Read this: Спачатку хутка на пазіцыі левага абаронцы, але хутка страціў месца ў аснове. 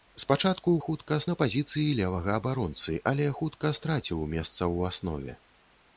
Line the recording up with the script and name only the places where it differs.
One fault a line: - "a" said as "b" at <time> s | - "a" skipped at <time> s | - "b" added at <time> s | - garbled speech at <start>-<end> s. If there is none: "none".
none